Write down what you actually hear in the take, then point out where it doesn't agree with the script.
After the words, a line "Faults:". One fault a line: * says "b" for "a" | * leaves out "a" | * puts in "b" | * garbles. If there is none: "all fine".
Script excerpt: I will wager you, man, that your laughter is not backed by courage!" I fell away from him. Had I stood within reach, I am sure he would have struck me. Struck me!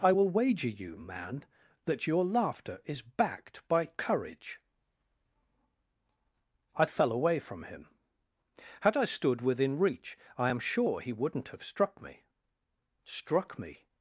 I will wager you, man, that your laughter is backed by courage!" I fell away from him. Had I stood within reach, I am sure he wouldn't have struck me. Struck me!
Faults:
* leaves out "not"
* says "wouldn't" for "would"